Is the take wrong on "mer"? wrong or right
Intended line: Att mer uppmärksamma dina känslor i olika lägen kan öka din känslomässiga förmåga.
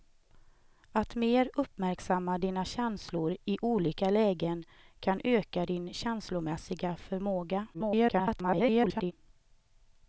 right